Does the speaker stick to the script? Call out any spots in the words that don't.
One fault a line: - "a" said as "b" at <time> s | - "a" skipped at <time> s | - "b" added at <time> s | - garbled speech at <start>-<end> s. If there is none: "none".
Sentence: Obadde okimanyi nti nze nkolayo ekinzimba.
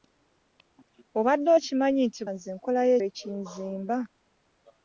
none